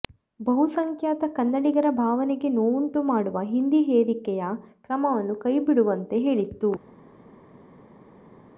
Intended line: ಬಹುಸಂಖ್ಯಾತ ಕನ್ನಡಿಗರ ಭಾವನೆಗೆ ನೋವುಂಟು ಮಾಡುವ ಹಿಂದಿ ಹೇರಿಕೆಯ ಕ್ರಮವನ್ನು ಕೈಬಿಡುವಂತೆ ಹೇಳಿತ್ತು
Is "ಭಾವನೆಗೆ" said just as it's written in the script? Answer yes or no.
yes